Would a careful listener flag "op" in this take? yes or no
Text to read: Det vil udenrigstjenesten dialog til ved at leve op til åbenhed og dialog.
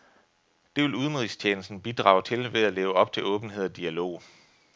no